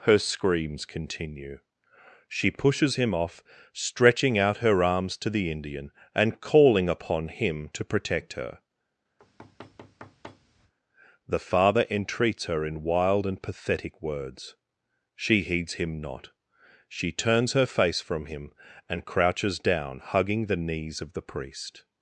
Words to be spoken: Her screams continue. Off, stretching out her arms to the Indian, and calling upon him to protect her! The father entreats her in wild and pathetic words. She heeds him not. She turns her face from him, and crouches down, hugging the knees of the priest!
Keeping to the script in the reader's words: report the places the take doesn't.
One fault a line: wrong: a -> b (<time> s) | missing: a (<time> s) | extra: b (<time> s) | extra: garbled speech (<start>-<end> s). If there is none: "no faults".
extra: She pushes him (2.3 s)